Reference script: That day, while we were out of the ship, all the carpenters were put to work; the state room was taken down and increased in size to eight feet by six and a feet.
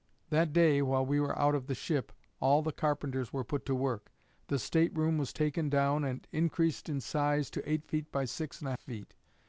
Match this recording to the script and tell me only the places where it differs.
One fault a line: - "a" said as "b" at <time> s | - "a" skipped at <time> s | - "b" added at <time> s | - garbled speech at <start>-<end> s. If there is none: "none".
none